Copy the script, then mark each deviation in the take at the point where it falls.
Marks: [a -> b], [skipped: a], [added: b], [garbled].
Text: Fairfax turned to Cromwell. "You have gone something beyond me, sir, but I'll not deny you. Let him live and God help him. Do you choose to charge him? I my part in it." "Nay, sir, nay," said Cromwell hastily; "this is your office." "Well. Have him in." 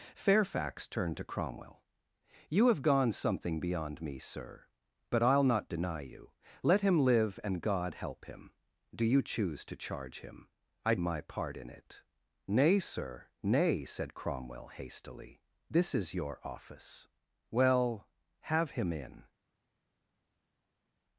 Fairfax turned to Cromwell. "You have gone something beyond me, sir, but I'll not deny you. Let him live and God help him. Do you choose to charge him? I my part in it." "Nay, sir, nay," said Cromwell hastily; "this is your office." "Well. Have him in."